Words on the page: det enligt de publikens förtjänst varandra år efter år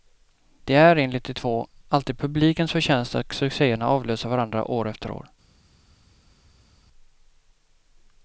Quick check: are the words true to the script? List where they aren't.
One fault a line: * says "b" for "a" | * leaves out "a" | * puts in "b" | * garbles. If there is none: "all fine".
* puts in "är"
* puts in "två alltid"
* puts in "att succéerna avlöser"